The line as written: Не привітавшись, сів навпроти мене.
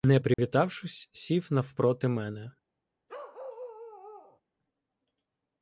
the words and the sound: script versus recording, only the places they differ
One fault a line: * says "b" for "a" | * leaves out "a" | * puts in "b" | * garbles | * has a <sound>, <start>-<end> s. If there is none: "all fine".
* has a dropout, 0.3-0.4 s
* has a bark, 3.1-4.4 s